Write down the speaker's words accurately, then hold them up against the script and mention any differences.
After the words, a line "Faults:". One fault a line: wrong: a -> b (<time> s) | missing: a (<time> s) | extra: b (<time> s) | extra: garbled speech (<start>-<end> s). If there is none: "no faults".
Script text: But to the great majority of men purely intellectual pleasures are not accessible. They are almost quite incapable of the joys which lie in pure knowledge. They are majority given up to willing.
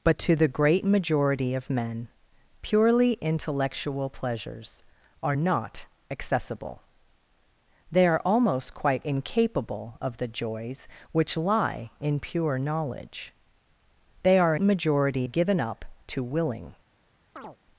But to the great majority of men purely intellectual pleasures are not accessible. They are almost quite incapable of the joys which lie in pure knowledge. They are majority given up to willing.
Faults:
no faults